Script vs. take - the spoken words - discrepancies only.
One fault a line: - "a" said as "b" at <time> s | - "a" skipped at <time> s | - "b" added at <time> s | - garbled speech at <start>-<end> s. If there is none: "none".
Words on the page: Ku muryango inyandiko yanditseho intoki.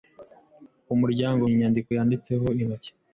none